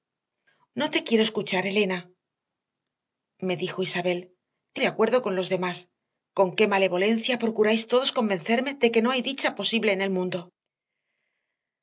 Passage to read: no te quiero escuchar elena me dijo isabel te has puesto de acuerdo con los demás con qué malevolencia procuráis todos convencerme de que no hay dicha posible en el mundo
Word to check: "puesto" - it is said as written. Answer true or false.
false